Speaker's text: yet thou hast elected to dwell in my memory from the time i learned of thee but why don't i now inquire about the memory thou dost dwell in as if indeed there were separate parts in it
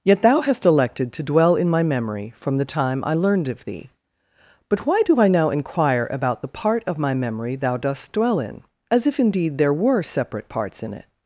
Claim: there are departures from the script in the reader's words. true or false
true